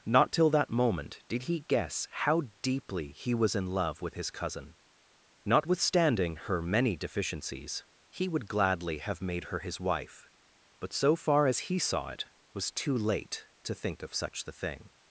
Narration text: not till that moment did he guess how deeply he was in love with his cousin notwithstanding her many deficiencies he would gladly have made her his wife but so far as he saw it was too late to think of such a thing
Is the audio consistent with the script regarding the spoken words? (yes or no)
no